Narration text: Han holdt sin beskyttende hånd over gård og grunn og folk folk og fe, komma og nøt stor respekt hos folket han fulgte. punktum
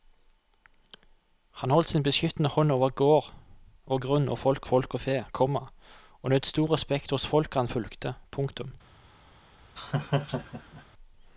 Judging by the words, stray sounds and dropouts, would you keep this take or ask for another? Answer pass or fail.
fail